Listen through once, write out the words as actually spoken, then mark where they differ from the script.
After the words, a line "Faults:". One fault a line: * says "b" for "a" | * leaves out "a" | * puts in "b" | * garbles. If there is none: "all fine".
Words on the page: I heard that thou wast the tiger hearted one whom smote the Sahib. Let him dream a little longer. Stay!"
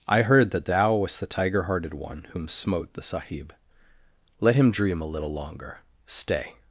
I heard that thou wast the tiger hearted one whom smote the Sahib. Let him dream a little longer. Stay!"
Faults:
all fine